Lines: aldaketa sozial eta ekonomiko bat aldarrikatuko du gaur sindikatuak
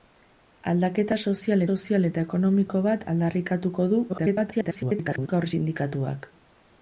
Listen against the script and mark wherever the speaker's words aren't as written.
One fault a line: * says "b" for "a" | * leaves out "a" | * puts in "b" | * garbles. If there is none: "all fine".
* puts in "sozial"
* garbles